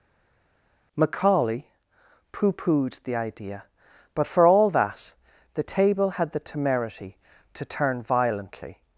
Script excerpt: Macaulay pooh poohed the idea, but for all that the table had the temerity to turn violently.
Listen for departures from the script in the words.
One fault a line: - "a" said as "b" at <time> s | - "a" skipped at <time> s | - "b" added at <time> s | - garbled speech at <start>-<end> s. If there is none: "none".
none